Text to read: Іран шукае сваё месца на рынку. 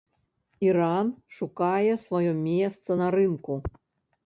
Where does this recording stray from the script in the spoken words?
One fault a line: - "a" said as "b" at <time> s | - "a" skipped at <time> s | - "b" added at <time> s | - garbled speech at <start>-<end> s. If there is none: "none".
none